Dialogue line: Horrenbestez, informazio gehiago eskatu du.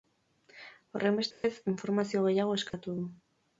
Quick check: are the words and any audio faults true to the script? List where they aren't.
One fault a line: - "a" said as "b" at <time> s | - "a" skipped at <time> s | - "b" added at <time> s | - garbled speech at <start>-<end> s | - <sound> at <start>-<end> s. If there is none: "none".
- dropout at 1.3-1.4 s
- dropout at 2.7-2.7 s